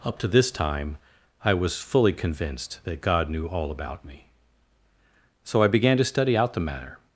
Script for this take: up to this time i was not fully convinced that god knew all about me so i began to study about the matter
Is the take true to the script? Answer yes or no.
no